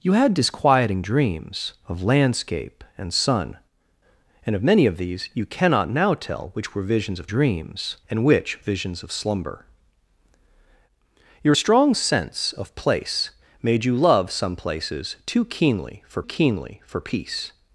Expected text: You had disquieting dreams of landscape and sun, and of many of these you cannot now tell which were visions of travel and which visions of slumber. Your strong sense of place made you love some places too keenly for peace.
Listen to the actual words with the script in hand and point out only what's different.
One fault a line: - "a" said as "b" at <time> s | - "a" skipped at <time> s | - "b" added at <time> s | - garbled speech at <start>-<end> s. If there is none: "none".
- "travel" said as "dreams" at 7.3 s
- "keenly for" added at 16.2 s